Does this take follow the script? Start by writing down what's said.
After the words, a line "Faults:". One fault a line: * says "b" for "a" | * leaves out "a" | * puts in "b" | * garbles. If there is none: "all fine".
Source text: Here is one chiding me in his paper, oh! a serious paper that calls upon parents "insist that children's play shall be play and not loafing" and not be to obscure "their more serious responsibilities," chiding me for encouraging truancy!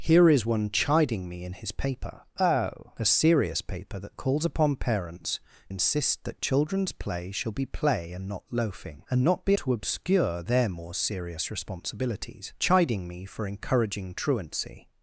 Here is one chiding me in his paper, oh! a serious paper that calls upon parents "insist that children's play shall be play and not loafing" and not be to obscure "their more serious responsibilities," chiding me for encouraging truancy!
Faults:
all fine